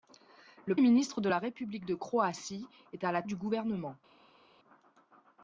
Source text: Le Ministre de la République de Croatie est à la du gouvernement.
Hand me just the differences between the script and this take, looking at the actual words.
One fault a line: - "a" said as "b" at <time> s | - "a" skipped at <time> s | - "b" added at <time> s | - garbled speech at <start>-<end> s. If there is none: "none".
none